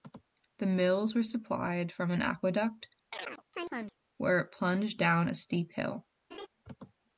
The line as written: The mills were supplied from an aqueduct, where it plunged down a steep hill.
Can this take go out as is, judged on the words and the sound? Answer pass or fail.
fail